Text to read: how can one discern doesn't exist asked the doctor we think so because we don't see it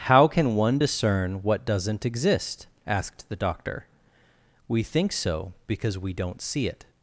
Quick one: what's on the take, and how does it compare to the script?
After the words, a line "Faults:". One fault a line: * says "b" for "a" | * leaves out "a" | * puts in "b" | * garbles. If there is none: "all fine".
how can one discern what doesn't exist asked the doctor we think so because we don't see it
Faults:
* puts in "what"